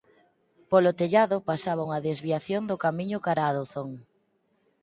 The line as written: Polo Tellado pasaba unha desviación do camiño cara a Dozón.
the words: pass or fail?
pass